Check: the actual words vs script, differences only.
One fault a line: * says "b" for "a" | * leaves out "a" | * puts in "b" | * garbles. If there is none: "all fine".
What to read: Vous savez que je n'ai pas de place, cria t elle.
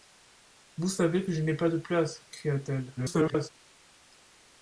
* garbles